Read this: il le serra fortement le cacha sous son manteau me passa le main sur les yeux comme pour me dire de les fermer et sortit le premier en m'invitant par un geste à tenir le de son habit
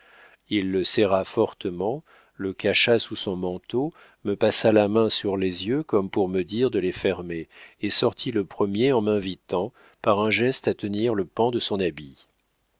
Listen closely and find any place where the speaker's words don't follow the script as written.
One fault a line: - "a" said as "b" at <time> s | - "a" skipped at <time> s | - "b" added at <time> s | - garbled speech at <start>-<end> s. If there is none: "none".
- "le" said as "la" at 4.7 s
- "pan" added at 11.3 s